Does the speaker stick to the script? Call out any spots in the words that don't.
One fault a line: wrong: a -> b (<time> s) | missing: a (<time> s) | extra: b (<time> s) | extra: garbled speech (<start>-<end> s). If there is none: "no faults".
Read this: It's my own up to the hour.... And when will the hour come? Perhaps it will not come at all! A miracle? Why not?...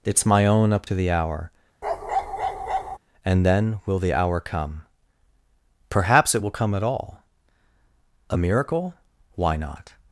wrong: when -> then (3.4 s)
missing: not (6.5 s)